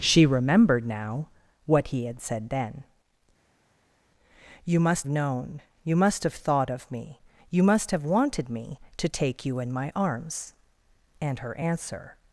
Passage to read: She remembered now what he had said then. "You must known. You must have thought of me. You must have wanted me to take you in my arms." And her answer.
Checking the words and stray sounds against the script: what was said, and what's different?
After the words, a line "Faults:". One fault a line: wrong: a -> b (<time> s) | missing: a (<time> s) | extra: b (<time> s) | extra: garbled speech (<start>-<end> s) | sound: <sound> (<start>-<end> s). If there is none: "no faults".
She remembered now what he had said then. "You must known. You must have thought of me. You must have wanted me to take you in my arms." And her answer.
Faults:
no faults